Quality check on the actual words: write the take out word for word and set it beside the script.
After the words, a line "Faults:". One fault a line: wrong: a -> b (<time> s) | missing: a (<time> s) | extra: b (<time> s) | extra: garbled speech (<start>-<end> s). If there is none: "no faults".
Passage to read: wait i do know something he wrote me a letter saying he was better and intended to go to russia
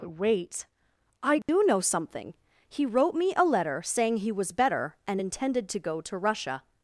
wait i do know something he wrote me a letter saying he was better and intended to go to russia
Faults:
no faults